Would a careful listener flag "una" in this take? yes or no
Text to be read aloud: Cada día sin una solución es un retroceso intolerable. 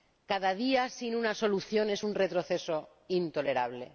no